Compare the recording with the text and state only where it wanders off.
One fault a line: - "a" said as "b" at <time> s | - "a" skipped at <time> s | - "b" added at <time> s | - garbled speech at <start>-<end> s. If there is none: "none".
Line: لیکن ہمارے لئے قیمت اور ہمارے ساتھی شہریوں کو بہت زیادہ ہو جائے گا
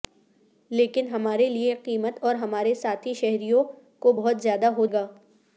- "جائے" skipped at 4.9 s